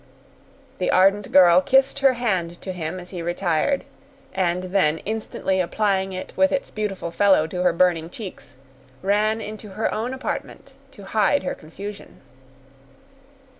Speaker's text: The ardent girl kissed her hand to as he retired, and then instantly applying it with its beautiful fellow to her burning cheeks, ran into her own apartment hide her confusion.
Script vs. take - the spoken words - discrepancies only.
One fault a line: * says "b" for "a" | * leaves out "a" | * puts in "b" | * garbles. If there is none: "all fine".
* puts in "him"
* puts in "to"